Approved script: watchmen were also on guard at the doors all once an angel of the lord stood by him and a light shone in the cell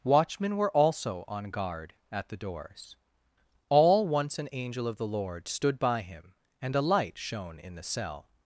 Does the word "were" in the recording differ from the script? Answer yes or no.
no